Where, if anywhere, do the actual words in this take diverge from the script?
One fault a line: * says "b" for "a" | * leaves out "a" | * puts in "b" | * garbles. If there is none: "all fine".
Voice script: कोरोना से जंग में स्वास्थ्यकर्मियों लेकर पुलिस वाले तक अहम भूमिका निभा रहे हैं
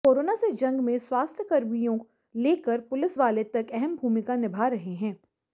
all fine